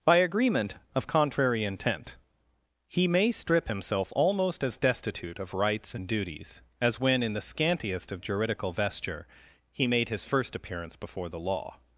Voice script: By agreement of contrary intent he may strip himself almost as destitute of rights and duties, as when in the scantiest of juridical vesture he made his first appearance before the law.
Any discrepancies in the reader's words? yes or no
no